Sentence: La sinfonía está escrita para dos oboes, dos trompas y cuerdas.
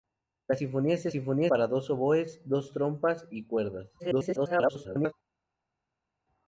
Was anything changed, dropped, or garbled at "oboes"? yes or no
no